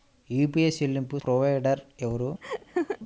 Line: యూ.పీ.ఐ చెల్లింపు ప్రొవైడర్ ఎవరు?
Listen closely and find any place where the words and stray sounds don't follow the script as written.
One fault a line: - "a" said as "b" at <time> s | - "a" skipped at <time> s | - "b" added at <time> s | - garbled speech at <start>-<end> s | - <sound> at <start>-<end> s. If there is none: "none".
- laugh at 2.4-3.0 s